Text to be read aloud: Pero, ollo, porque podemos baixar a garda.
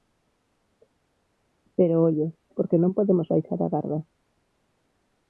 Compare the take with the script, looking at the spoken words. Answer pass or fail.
fail